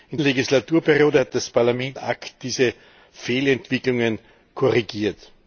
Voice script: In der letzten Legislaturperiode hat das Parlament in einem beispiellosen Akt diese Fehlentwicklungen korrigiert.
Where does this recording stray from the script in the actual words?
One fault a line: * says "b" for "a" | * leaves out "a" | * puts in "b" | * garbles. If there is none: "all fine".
* leaves out "der letzten"
* leaves out "in einem beispiellosen"